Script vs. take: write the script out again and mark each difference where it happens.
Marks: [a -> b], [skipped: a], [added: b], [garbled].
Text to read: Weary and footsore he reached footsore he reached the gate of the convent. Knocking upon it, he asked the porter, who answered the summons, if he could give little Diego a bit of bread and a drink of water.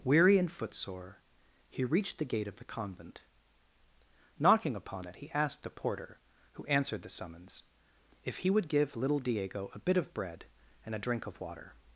Weary and footsore he reached [skipped: footsore he reached] the gate of the convent. Knocking upon it, he asked the porter, who answered the summons, if he [could -> would] give little Diego a bit of bread and a drink of water.